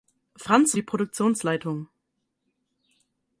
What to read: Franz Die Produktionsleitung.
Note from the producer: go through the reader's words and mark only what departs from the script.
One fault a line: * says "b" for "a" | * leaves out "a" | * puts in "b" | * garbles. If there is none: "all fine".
all fine